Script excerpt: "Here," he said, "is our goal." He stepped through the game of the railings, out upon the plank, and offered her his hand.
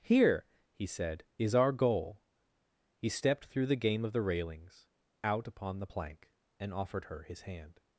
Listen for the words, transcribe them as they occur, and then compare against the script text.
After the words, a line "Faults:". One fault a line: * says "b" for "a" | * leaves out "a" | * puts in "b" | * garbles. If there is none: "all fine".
"Here," he said, "is our goal." He stepped through the game of the railings, out upon the plank, and offered her his hand.
Faults:
all fine